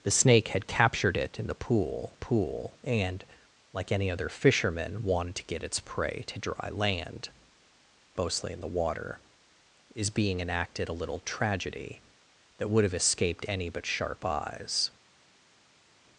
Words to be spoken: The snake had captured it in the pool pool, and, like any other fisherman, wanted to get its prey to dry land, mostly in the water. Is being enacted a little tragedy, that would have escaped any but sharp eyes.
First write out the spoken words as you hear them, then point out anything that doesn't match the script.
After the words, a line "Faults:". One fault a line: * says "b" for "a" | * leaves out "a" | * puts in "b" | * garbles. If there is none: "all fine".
The snake had captured it in the pool pool, and, like any other fisherman, wanted to get its prey to dry land, mostly in the water. Is being enacted a little tragedy, that would have escaped any but sharp eyes.
Faults:
all fine